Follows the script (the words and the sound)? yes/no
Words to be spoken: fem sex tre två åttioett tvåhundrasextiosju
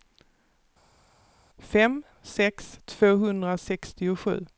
no